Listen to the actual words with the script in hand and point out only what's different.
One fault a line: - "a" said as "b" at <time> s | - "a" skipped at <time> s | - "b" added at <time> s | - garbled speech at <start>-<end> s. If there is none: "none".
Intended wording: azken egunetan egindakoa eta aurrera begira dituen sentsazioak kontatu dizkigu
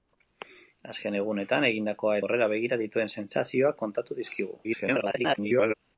- "eta" skipped at 2.2 s
- garbled speech at 4.6-5.7 s